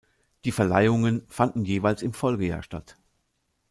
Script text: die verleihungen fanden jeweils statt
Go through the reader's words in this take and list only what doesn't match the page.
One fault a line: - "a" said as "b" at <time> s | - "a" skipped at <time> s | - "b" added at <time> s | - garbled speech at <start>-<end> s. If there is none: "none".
- "im folgejahr" added at 2.0 s